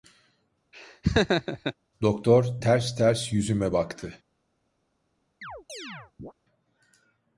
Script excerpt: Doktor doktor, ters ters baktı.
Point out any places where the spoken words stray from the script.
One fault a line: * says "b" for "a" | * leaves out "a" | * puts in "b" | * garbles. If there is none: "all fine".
* says "ters" for "doktor"
* says "yüzüme" for "ters"